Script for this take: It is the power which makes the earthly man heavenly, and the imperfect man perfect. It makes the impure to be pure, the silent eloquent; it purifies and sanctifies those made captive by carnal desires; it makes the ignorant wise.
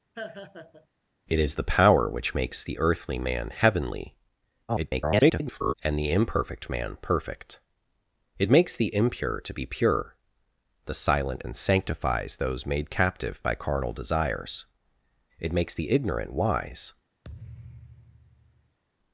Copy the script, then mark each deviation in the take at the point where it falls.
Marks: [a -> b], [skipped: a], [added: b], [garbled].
It is the power which makes the earthly man heavenly, [garbled] and the imperfect man perfect. It makes the impure to be pure, the silent [skipped: eloquent; it purifies] and sanctifies those made captive by carnal desires; it makes the ignorant wise.